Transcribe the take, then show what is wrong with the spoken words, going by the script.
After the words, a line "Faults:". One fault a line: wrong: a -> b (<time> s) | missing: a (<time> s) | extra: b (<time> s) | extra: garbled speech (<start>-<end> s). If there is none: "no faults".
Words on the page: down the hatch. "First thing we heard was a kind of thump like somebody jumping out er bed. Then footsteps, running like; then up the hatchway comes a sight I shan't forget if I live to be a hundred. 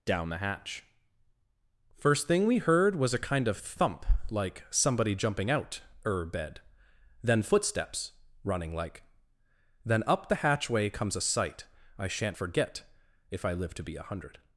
down the hatch. "First thing we heard was a kind of thump like somebody jumping out er bed. Then footsteps, running like; then up the hatchway comes a sight I shan't forget if I live to be a hundred.
Faults:
no faults